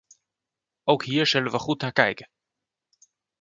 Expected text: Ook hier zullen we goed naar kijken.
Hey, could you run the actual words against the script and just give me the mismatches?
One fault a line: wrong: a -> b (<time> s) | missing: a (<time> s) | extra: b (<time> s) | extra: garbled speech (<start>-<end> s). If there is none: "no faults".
no faults